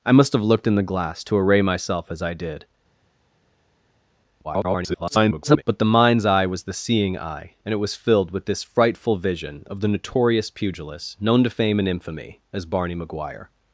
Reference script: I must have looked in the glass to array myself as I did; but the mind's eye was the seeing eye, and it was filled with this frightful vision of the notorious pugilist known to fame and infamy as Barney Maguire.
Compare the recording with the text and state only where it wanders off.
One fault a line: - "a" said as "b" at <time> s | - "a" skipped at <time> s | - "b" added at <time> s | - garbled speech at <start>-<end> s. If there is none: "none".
- garbled speech at 4.4-5.6 s